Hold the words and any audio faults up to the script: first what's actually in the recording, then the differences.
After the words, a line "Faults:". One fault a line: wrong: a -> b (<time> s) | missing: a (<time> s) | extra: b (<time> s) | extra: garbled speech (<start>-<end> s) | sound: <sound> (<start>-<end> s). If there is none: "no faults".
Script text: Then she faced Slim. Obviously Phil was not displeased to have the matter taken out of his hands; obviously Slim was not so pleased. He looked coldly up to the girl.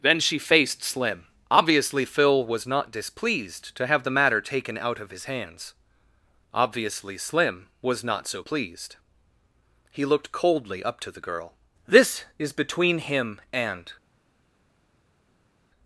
Then she faced Slim. Obviously Phil was not displeased to have the matter taken out of his hands; obviously Slim was not so pleased. He looked coldly up to the girl. "This is between him and
Faults:
extra: This is between him and (11.8 s)